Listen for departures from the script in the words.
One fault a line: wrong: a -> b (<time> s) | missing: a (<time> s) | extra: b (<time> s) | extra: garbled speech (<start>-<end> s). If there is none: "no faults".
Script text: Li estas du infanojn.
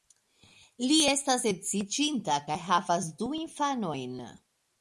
extra: edziĝinta kaj havas (1.5 s)